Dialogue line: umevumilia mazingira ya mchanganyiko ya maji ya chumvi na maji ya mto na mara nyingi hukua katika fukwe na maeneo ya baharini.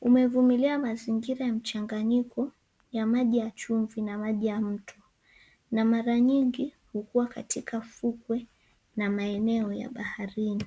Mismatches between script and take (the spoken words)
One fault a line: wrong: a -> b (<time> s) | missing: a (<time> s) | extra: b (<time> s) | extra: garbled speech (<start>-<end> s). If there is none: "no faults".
no faults